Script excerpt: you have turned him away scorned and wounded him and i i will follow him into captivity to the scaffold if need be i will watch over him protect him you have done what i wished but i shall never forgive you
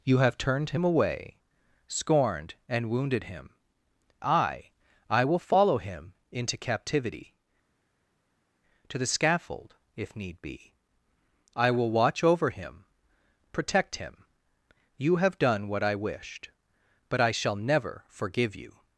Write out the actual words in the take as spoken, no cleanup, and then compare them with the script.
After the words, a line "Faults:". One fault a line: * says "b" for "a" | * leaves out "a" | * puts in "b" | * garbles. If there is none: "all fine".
you have turned him away scorned and wounded him i i will follow him into captivity to the scaffold if need be i will watch over him protect him you have done what i wished but i shall never forgive you
Faults:
* leaves out "and"